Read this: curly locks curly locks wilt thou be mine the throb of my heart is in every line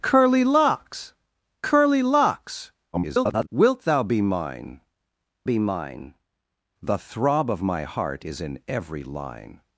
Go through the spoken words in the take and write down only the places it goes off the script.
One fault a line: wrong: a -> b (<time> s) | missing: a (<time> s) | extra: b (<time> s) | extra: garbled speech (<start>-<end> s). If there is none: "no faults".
extra: garbled speech (2.9-3.5 s)
extra: be mine (5.4 s)